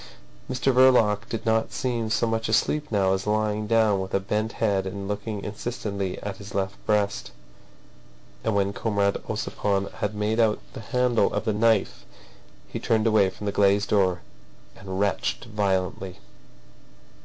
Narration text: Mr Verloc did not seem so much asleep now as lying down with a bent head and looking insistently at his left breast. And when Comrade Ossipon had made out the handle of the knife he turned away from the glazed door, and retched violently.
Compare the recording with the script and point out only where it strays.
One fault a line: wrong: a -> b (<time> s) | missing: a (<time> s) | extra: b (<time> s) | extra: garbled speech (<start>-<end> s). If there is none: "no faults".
no faults